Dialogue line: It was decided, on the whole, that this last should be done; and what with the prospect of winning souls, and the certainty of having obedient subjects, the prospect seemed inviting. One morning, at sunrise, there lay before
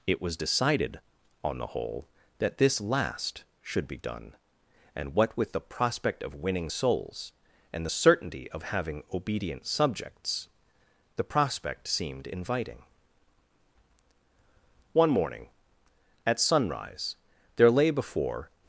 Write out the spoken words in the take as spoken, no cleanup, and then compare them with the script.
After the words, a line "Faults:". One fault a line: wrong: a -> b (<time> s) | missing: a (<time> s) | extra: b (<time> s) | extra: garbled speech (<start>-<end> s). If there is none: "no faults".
It was decided, on the whole, that this last should be done; and what with the prospect of winning souls, and the certainty of having obedient subjects, the prospect seemed inviting. One morning, at sunrise, there lay before
Faults:
no faults